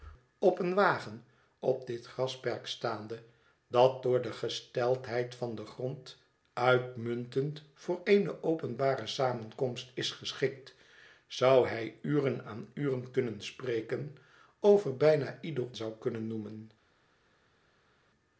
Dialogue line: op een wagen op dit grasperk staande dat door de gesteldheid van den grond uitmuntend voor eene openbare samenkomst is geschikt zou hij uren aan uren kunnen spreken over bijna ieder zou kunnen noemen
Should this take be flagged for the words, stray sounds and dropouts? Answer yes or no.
no